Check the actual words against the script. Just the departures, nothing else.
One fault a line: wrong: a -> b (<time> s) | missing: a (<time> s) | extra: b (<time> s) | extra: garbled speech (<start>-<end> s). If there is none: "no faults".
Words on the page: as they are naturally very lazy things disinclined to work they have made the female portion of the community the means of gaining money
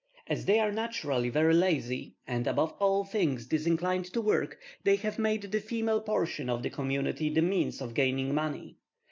extra: and above all (2.2 s)